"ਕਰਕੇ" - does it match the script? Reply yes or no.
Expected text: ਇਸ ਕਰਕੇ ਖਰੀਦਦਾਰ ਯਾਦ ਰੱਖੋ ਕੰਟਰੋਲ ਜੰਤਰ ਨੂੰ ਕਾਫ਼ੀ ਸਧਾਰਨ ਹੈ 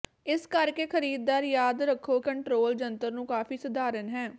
yes